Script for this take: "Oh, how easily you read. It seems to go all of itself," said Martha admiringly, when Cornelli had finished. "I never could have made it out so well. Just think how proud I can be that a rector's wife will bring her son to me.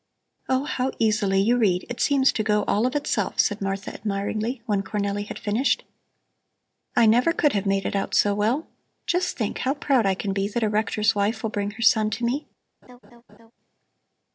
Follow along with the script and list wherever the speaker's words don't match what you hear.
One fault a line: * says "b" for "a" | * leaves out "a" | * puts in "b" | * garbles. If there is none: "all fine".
all fine